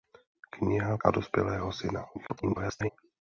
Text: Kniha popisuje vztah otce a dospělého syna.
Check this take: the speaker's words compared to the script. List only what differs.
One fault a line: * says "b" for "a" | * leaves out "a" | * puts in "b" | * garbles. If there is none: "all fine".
* leaves out "popisuje vztah otce"
* garbles